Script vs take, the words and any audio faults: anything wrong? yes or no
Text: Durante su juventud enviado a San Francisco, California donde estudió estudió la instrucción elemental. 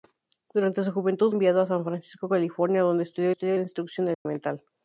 yes